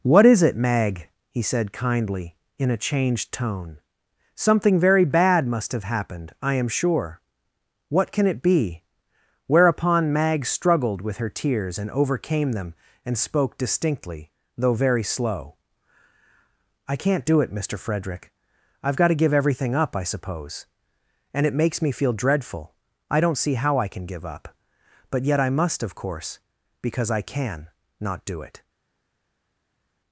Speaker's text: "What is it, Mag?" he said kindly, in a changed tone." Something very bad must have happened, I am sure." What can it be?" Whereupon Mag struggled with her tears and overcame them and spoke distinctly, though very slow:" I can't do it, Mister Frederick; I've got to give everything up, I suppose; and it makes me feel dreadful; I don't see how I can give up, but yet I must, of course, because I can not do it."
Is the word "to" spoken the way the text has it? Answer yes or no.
yes